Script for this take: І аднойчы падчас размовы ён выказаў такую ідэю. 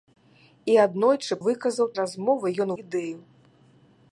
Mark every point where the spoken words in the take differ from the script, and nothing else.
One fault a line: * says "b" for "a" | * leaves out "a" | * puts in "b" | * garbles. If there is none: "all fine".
* says "выказаў" for "падчас"
* leaves out "выказаў такую"